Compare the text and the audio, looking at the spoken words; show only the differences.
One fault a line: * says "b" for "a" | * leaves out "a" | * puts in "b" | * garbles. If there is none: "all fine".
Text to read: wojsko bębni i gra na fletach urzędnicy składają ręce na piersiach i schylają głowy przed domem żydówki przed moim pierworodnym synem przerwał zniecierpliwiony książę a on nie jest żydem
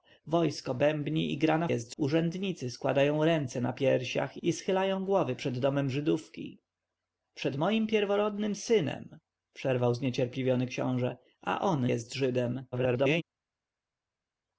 * says "jest" for "fletach"
* leaves out "nie"
* garbles